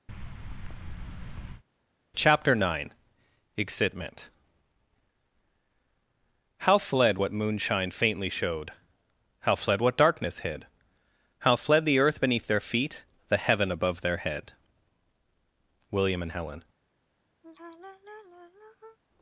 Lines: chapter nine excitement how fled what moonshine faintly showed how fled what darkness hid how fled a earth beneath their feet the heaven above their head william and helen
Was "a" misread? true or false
true